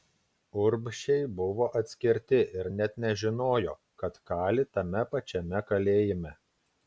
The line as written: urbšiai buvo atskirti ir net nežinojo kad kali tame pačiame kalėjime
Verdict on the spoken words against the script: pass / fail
pass